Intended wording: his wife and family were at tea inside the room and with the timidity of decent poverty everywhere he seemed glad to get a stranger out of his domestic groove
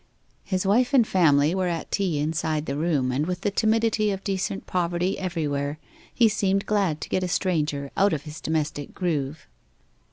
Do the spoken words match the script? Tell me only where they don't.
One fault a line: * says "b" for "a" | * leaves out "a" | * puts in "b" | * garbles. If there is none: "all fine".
all fine